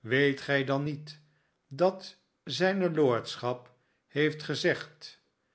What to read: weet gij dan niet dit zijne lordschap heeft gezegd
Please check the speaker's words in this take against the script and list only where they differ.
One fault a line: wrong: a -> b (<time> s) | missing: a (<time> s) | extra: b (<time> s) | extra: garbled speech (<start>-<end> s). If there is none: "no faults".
wrong: dit -> dat (1.7 s)